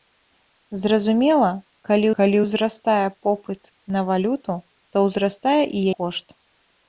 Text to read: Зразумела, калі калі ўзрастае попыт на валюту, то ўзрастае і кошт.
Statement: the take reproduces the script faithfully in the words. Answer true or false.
true